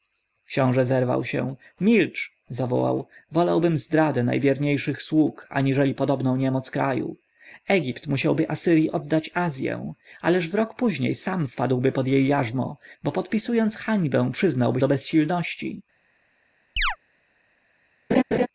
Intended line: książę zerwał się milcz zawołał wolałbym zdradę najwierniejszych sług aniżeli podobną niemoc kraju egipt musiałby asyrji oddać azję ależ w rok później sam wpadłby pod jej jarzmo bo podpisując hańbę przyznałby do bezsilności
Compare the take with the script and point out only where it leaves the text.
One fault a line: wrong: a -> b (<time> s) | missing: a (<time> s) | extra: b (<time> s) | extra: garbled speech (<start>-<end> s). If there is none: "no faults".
no faults